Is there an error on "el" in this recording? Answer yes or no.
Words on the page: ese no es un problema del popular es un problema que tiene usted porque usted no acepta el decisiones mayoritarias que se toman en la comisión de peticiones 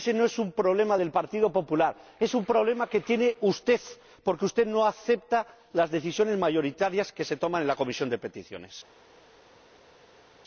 yes